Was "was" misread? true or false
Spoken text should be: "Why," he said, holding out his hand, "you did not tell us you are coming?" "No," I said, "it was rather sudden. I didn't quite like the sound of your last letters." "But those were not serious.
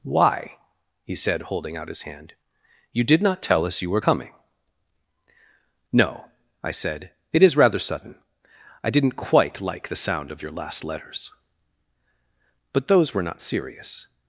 true